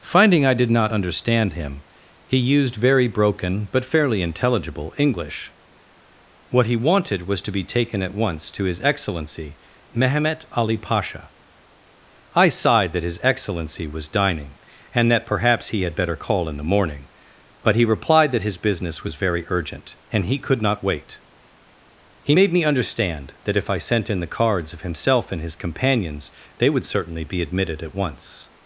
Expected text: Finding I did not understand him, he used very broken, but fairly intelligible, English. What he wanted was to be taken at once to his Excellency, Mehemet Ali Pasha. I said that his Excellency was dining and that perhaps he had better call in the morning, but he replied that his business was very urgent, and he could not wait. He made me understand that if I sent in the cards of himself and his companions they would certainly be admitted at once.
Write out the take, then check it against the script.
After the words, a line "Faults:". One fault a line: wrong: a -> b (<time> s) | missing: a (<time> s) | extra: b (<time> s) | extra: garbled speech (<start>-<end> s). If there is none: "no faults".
Finding I did not understand him, he used very broken, but fairly intelligible, English. What he wanted was to be taken at once to his Excellency, Mehemet Ali Pasha. I sighed that his Excellency was dining and that perhaps he had better call in the morning, but he replied that his business was very urgent, and he could not wait. He made me understand that if I sent in the cards of himself and his companions they would certainly be admitted at once.
Faults:
wrong: said -> sighed (12.5 s)